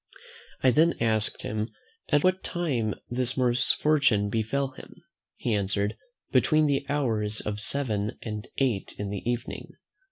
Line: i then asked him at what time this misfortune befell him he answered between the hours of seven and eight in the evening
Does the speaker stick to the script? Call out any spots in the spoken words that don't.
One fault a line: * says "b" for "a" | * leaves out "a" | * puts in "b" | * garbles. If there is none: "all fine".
all fine